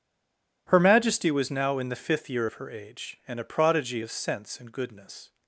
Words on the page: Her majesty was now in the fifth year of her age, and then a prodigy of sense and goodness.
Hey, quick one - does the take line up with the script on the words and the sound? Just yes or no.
no